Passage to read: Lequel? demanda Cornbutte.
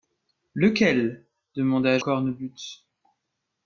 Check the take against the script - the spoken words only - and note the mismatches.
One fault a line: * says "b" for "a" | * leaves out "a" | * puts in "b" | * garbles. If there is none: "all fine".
all fine